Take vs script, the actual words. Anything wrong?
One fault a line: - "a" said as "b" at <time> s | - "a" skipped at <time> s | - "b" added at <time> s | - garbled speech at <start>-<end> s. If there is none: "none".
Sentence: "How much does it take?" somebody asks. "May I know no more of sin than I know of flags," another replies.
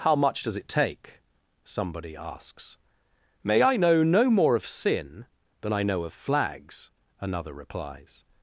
none